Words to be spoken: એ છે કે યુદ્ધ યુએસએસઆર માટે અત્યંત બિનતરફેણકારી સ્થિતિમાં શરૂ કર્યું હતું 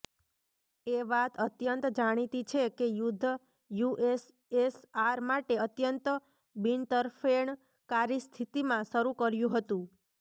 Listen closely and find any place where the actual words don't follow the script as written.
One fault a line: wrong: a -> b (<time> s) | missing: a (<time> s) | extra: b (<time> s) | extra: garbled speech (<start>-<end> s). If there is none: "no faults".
extra: વાત અત્યંત જાણીતી (1.1 s)